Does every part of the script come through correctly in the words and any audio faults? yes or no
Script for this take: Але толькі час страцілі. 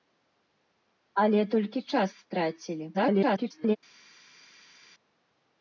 no